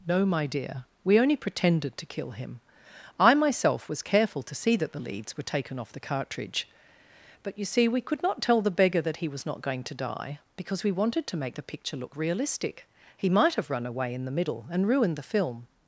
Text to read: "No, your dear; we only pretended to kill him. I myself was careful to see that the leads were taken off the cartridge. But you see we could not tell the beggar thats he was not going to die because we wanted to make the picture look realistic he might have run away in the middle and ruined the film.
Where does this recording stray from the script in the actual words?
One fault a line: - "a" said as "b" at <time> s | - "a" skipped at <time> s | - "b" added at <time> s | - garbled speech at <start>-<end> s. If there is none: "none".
- "your" said as "my" at 0.2 s
- "thats" said as "that" at 9.0 s